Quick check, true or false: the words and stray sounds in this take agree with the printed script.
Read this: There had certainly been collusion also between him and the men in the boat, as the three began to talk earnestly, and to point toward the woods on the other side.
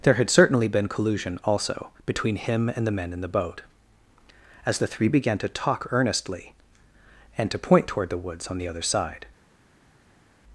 true